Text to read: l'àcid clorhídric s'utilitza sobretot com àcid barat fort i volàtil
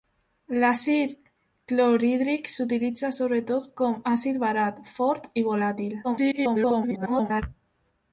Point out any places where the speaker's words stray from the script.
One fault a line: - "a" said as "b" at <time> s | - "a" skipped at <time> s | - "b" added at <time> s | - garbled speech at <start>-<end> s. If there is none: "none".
- garbled speech at 6.0-7.4 s